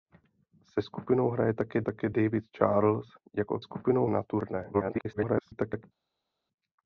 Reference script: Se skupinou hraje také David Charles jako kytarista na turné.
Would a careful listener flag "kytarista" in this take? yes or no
yes